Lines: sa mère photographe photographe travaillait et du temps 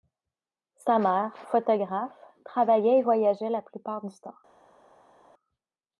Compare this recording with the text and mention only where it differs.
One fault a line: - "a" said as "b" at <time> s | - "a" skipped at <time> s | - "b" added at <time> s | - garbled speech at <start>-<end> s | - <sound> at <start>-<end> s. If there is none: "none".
- "photographe" skipped at 2.2 s
- "voyageait la plupart" added at 3.0 s